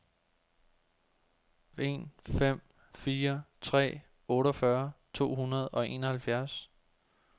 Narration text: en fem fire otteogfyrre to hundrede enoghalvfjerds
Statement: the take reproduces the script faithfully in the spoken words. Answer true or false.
false